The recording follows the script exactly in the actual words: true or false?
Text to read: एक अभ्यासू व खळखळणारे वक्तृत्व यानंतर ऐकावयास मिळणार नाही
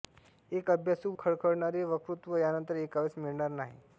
false